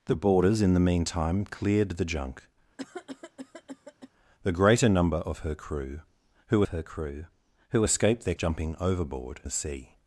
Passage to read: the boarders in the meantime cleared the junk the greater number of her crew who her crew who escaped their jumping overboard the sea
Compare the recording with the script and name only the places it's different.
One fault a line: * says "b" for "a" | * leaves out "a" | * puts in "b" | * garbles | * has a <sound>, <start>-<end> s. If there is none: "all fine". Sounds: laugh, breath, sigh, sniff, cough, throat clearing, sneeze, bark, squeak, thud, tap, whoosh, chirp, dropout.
* has a cough, 2.8-4.1 s